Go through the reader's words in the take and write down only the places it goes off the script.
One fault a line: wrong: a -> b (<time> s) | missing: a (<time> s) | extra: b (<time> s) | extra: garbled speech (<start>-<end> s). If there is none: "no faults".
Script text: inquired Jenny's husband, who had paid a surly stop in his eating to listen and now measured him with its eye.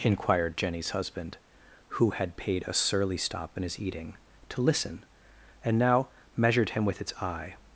no faults